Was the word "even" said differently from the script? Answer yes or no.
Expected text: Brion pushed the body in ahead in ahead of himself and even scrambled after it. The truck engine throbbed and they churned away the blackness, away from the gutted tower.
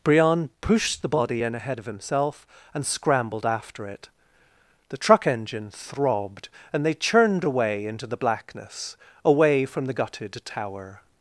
yes